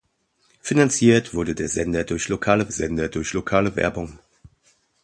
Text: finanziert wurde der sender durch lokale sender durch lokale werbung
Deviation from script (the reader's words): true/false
false